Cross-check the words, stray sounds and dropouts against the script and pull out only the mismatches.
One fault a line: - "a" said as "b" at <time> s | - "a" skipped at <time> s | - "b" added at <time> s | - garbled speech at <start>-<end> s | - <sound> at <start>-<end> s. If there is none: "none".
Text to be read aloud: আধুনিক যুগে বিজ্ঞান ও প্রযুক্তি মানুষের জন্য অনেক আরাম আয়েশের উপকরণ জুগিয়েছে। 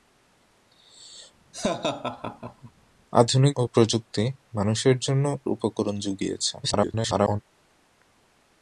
- laugh at 1.5-2.7 s
- "যুগে বিজ্ঞান" skipped at 3.5 s
- "অনেক আরাম আয়েশের" skipped at 5.2 s
- garbled speech at 6.6-7.4 s